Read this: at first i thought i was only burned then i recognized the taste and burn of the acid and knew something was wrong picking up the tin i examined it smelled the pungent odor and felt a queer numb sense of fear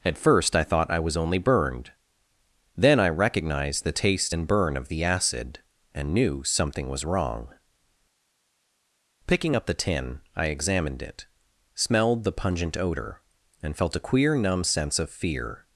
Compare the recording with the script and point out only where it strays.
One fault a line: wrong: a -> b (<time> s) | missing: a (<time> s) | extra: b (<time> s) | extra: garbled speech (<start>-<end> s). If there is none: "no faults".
no faults